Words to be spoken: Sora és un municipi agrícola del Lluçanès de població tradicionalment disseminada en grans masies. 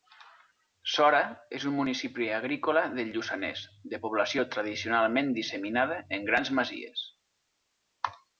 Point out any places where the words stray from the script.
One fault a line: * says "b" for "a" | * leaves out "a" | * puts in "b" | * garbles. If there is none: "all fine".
all fine